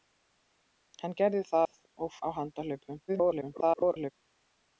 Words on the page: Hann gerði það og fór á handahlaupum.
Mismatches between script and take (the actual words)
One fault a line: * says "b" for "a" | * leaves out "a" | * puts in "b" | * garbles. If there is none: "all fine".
* leaves out "fór"
* garbles